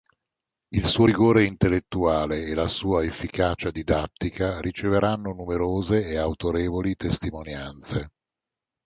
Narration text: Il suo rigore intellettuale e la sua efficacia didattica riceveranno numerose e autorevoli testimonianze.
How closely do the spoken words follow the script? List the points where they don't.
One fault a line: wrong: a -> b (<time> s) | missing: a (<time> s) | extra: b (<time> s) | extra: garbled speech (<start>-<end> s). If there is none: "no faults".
no faults